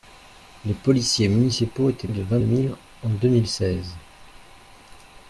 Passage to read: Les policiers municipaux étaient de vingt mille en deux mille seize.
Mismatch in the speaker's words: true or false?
false